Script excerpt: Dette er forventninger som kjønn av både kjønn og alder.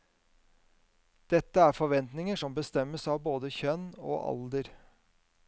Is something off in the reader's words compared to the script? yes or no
yes